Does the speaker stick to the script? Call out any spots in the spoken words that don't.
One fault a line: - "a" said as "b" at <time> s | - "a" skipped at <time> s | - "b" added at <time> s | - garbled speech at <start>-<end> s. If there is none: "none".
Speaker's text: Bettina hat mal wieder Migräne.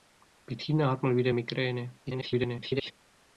- garbled speech at 2.1-2.9 s